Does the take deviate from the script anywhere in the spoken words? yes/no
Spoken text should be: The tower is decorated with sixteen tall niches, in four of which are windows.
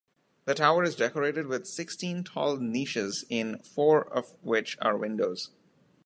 no